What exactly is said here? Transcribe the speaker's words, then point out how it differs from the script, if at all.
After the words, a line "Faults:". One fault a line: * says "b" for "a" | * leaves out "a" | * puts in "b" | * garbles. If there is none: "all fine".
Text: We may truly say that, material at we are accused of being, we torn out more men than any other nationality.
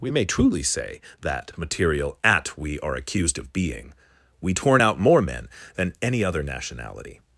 We may truly say that, material at we are accused of being, we torn out more men than any other nationality.
Faults:
all fine